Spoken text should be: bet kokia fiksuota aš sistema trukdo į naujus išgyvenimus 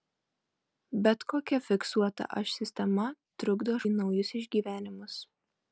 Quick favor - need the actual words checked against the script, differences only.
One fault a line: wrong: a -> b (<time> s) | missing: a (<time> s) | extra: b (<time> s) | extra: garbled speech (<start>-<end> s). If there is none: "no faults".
no faults